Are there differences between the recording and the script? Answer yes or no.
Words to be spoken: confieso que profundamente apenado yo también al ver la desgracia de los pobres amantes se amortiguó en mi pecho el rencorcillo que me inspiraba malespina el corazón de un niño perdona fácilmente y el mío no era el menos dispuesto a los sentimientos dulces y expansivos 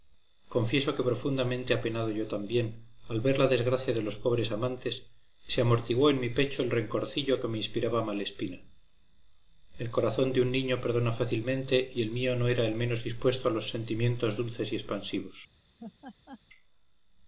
no